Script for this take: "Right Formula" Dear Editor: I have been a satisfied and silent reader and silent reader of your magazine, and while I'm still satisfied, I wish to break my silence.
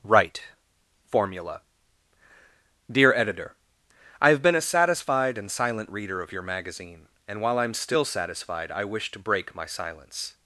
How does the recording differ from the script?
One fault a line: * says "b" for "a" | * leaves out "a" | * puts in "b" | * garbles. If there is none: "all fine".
* leaves out "and silent reader"